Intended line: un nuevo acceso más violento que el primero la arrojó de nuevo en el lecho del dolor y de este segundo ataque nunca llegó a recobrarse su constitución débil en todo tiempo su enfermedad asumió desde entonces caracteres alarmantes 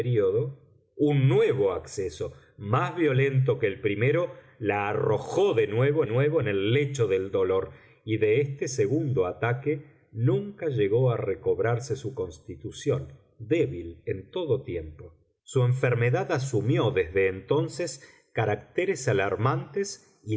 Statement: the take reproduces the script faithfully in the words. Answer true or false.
false